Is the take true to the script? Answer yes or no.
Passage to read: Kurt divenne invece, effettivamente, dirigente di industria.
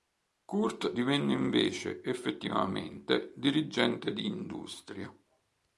yes